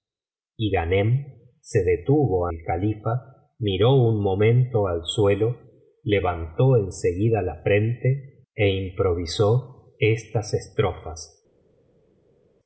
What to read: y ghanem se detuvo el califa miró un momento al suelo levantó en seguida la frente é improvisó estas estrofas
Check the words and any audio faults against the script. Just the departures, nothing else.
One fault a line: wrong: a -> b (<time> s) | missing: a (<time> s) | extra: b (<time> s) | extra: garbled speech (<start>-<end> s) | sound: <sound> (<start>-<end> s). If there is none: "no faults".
no faults